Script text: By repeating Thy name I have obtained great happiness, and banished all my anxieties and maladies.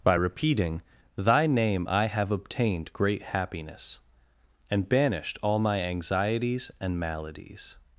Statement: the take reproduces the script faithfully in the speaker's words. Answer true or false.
true